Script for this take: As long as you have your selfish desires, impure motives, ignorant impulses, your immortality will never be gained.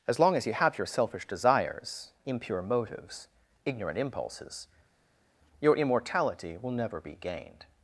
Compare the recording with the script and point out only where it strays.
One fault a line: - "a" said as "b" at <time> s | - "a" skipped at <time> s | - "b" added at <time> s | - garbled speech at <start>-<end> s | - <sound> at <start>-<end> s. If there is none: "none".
none